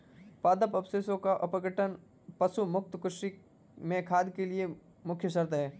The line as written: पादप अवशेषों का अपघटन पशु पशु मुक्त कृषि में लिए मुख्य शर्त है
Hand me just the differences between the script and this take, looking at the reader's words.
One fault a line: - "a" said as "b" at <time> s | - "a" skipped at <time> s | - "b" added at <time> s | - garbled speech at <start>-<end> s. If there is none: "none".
- "पशु" skipped at 2.6 s
- "खाद के" added at 4.0 s